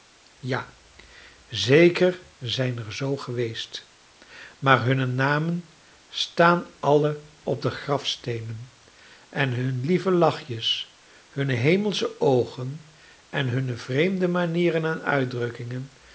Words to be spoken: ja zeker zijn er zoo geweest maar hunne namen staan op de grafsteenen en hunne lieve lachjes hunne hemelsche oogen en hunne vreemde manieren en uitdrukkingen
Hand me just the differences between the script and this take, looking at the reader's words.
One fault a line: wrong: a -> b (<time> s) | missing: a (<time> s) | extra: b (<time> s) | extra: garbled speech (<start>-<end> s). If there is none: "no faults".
extra: alle (6.8 s)